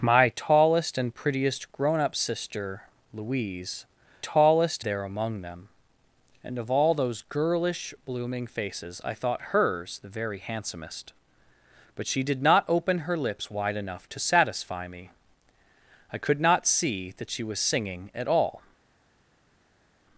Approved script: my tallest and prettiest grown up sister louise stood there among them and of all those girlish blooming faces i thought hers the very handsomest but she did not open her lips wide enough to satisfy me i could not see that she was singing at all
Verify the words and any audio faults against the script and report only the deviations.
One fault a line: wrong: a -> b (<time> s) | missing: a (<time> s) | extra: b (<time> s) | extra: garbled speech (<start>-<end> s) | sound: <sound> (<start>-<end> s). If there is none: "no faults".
wrong: stood -> tallest (4.2 s)